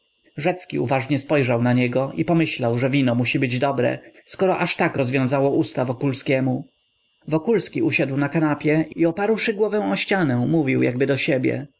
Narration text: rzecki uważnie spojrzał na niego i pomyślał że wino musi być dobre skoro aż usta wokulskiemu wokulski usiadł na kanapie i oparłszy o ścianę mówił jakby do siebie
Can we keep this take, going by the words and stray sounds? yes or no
no